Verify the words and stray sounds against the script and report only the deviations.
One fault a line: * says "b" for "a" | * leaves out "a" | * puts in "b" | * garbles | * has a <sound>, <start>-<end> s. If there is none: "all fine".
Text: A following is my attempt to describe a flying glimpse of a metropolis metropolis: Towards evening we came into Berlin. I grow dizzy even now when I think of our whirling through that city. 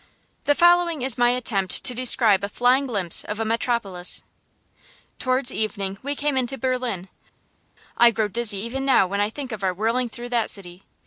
* says "The" for "A"
* leaves out "metropolis"